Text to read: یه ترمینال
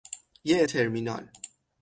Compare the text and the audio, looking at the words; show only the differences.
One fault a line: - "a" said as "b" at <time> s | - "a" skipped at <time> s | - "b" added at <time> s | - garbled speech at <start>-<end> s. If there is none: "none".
none